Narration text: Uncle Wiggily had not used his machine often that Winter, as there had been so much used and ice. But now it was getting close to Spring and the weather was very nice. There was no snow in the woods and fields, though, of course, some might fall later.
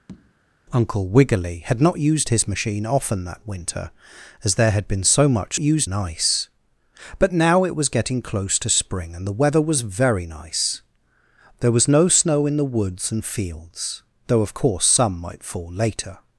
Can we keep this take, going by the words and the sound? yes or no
no